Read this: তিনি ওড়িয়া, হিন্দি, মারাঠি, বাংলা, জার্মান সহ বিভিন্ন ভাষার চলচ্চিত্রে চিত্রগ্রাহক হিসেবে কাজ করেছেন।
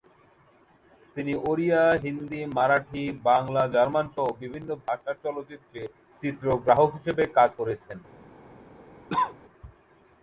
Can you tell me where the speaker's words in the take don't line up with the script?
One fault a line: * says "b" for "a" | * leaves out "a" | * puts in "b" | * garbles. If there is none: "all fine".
all fine